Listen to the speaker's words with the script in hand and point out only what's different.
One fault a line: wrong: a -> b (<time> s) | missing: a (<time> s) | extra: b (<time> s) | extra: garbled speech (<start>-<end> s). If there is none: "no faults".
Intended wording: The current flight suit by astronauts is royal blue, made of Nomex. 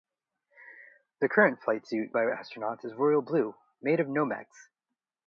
no faults